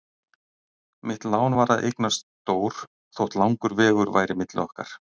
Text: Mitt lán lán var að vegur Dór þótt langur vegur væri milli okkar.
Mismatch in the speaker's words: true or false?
true